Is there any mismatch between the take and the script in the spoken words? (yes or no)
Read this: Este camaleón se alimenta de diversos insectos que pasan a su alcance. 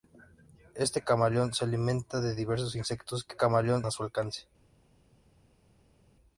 yes